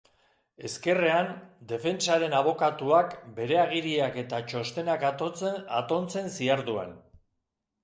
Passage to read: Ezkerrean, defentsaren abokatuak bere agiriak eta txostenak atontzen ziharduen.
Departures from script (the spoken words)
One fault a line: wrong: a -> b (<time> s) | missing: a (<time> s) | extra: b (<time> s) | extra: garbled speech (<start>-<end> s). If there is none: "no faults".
no faults